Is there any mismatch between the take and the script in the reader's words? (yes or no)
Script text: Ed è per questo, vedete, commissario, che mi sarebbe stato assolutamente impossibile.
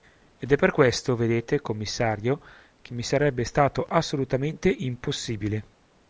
no